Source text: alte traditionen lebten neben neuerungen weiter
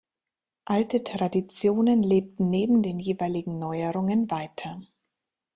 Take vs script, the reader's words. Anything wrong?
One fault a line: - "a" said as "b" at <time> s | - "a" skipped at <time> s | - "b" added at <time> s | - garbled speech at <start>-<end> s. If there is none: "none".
- "den jeweiligen" added at 2.8 s